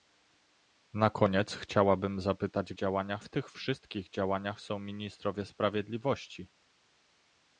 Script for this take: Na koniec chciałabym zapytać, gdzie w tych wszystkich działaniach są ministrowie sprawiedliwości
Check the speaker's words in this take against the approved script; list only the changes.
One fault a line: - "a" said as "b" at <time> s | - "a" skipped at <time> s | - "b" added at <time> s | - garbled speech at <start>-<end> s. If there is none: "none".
- "gdzie" said as "działaniach" at 2.7 s